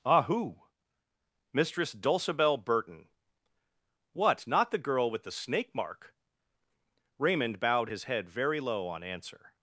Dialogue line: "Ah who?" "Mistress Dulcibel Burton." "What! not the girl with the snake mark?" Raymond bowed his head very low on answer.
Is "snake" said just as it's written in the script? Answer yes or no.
yes